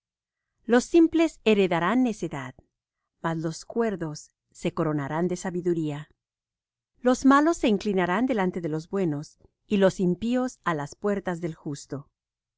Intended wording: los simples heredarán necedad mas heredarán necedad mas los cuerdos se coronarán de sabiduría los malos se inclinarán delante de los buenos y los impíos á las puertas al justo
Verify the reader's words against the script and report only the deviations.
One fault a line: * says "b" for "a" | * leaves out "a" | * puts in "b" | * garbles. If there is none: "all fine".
* leaves out "heredarán necedad mas"
* says "del" for "al"